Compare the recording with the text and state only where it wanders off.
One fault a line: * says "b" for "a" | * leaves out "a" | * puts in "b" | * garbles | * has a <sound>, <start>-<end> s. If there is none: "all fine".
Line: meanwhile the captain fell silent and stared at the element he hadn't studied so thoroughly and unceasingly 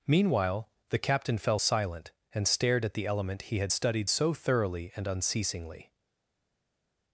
* says "had" for "hadn't"